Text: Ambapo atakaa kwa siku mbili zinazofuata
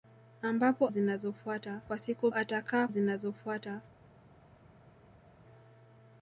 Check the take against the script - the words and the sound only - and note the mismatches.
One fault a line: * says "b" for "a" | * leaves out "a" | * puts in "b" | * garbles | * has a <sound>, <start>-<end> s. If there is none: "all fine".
* says "zinazofuata" for "atakaa"
* says "atakaa" for "mbili"